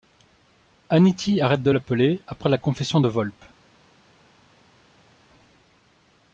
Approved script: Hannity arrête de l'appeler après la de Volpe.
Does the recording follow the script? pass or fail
fail